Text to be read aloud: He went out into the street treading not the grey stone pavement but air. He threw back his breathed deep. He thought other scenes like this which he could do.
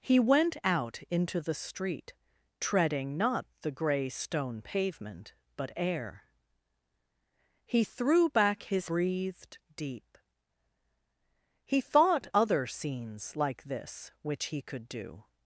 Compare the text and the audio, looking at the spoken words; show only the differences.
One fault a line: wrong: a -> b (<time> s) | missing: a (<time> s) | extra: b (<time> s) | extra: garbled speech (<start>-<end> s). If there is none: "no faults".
no faults